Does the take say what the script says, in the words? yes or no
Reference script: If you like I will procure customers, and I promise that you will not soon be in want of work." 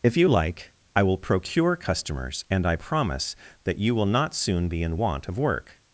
yes